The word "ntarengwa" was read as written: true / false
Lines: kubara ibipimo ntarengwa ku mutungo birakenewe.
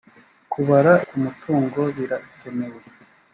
false